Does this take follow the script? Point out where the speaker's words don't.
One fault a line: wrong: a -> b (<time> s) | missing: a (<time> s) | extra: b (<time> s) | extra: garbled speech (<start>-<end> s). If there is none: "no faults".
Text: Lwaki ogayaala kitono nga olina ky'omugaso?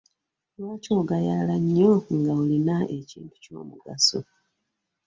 wrong: kitono -> nnyo (1.6 s)
extra: ekintu (3.0 s)